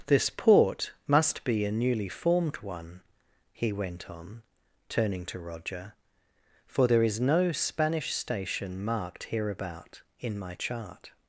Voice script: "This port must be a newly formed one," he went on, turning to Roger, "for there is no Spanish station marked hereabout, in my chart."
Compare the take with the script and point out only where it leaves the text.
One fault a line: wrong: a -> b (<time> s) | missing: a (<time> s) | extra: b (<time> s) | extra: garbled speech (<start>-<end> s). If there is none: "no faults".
no faults